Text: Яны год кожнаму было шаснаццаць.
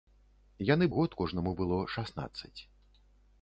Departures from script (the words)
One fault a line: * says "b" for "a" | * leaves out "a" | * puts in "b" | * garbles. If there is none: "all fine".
all fine